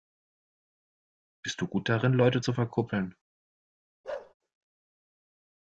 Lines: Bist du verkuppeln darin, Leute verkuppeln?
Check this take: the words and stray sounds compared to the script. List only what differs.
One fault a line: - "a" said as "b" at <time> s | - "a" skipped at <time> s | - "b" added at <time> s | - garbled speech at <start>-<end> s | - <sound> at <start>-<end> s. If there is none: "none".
- "verkuppeln" said as "gut" at 1.7 s
- "zu" added at 2.4 s
- bark at 4.0-4.3 s